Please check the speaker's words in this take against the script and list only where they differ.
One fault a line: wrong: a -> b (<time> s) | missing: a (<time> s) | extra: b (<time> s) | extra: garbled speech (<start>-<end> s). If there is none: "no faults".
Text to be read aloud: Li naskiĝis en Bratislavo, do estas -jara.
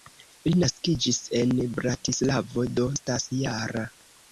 no faults